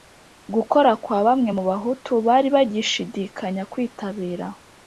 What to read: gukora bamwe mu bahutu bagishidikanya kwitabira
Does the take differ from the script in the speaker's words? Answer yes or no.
yes